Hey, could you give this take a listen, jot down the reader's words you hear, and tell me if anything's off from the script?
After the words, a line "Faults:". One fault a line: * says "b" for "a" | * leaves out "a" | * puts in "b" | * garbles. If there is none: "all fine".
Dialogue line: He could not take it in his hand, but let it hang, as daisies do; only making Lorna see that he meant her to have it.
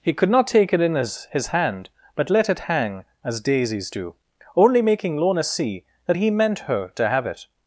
He could not take it in his his hand, but let it hang, as daisies do; only making Lorna see that he meant her to have it.
Faults:
* puts in "his"